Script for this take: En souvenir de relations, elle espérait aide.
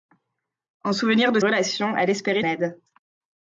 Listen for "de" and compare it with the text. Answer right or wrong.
right